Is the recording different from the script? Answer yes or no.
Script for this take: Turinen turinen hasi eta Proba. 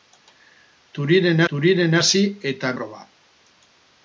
no